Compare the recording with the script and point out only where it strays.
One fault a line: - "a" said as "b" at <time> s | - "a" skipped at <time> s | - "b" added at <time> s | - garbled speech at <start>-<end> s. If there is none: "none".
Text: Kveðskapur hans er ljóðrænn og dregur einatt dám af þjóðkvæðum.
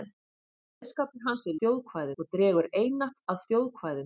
- "ljóðrænn" said as "þjóðkvæðum" at 1.6 s
- "dám" skipped at 3.2 s